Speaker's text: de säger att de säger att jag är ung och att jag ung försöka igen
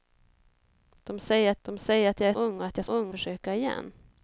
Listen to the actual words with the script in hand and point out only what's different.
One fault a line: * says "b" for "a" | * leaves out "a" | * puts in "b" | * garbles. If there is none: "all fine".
all fine